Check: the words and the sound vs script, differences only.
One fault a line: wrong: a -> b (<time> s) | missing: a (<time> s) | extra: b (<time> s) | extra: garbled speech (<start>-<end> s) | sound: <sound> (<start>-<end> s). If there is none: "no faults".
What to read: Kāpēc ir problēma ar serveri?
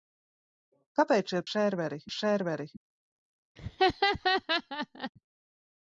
wrong: problēma -> serveri (1.5 s)
sound: laugh (3.6-5.1 s)